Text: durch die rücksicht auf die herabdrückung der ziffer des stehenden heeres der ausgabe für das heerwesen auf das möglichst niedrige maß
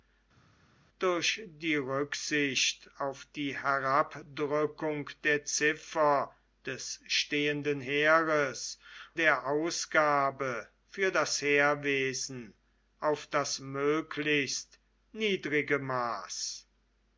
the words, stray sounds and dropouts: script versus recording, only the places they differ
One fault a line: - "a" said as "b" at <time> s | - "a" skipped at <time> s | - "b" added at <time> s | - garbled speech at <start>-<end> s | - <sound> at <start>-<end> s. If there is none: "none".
none